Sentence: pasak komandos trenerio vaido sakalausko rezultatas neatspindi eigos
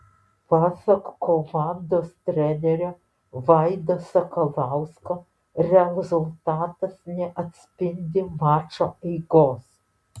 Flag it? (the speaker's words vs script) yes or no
yes